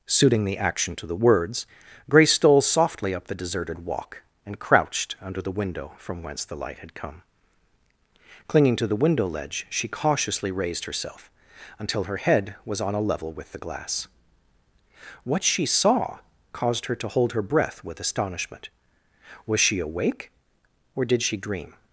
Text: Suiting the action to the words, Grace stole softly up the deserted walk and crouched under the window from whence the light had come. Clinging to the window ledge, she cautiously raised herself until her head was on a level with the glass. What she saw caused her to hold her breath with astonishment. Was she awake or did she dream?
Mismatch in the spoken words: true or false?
false